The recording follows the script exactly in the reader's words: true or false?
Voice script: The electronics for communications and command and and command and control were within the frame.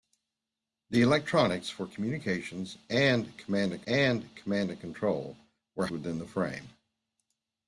true